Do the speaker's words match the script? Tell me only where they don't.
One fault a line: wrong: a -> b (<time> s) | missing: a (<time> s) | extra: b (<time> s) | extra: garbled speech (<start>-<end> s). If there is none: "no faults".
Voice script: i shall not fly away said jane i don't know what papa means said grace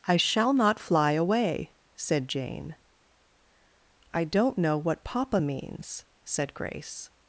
no faults